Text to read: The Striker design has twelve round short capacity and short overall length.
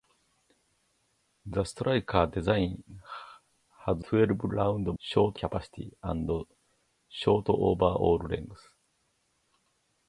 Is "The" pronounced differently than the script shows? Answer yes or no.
no